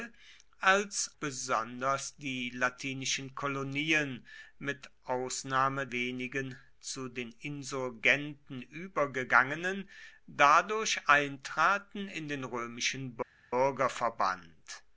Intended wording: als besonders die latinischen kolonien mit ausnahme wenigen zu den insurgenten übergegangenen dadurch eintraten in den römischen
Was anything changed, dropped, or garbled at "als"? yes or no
no